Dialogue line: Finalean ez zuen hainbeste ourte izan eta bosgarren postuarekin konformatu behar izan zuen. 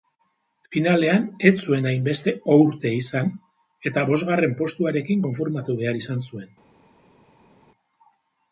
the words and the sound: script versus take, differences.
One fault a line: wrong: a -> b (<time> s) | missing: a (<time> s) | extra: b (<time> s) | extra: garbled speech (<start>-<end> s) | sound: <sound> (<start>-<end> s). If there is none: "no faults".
no faults